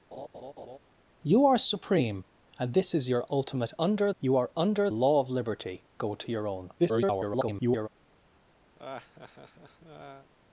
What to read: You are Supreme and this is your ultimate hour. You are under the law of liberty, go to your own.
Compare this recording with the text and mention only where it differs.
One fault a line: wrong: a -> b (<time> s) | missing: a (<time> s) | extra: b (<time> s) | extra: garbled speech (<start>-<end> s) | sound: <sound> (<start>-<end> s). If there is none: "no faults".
sound: laugh (0.1-0.8 s)
wrong: hour -> under (3.8 s)
missing: the (4.9 s)
extra: garbled speech (6.8-7.9 s)
sound: laugh (8.8-10.3 s)